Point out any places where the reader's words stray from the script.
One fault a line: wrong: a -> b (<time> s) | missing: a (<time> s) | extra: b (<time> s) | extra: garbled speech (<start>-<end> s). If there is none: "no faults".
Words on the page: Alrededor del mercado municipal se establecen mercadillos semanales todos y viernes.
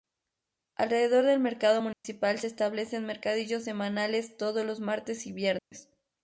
extra: los martes (4.6 s)